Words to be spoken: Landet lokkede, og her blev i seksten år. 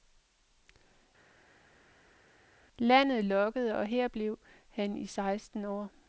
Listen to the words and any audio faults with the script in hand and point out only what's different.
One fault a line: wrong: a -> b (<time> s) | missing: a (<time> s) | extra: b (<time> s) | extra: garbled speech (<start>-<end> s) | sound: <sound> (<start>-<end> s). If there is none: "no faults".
extra: han (4.7 s)